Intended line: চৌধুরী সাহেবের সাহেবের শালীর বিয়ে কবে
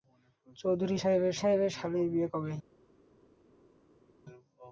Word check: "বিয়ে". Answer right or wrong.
right